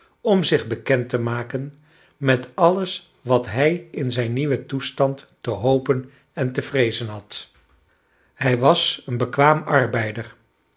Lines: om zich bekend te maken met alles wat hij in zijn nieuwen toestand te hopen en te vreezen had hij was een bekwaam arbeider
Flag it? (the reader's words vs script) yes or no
no